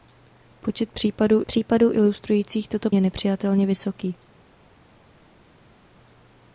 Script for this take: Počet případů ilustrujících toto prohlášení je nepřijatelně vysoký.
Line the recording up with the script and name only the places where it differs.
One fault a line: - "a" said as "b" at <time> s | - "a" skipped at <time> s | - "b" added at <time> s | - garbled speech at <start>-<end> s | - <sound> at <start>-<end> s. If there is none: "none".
- "případů" added at 1.4 s
- "prohlášení" skipped at 2.9 s